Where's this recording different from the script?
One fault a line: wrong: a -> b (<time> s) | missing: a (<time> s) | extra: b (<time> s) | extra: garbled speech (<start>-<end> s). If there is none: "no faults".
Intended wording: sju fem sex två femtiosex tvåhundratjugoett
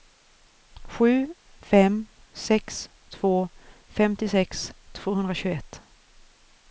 no faults